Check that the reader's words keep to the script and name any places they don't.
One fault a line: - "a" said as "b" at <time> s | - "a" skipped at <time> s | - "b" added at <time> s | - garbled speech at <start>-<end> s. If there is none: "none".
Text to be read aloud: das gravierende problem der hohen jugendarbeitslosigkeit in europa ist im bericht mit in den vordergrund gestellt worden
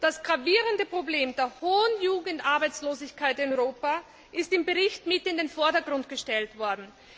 none